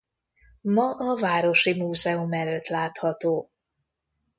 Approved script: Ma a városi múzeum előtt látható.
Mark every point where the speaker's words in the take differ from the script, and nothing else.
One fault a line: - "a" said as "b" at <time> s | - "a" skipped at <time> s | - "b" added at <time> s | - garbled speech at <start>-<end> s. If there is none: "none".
none